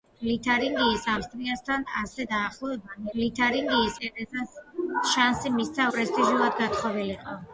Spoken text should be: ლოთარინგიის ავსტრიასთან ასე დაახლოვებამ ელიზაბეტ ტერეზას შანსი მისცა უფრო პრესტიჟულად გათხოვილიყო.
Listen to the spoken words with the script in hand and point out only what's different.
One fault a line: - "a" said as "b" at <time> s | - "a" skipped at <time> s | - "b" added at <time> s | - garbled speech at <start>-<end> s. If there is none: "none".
- "ელიზაბეტ" said as "ლოთარინგიის" at 3.2 s
- "უფრო" skipped at 5.9 s